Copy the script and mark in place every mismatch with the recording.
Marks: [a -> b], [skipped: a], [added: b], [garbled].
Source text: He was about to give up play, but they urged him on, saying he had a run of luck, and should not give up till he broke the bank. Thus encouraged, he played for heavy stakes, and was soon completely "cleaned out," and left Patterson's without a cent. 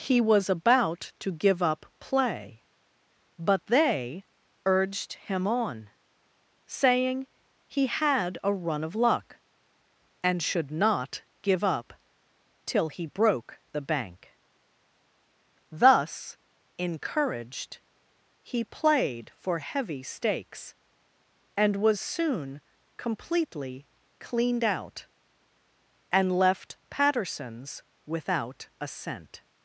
He was about to give up play, but they urged him on, saying he had a run of luck, and should not give up till he broke the bank. Thus encouraged, he played for heavy stakes, and was soon completely "cleaned out," and left Patterson's without a cent.